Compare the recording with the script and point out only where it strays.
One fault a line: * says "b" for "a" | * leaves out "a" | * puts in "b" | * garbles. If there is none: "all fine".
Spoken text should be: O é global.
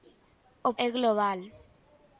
all fine